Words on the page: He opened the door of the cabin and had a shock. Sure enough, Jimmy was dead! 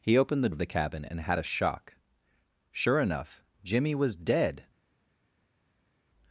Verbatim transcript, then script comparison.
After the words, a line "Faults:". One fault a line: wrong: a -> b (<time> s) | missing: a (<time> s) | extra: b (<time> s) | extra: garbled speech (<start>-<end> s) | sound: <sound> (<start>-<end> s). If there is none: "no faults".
He opened the of the cabin and had a shock. Sure enough, Jimmy was dead!
Faults:
missing: door (0.5 s)